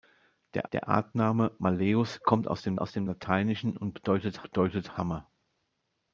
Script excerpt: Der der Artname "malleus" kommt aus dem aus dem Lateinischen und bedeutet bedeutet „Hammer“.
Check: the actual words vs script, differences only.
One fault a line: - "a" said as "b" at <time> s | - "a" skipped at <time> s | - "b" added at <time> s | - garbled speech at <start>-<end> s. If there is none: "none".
none